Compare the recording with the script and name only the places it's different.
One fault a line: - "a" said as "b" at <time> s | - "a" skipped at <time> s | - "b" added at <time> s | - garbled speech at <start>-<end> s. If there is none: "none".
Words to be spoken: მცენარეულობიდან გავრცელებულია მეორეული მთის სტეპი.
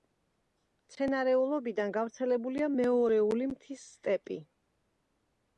none